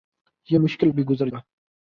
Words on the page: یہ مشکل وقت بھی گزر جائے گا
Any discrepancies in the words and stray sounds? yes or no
yes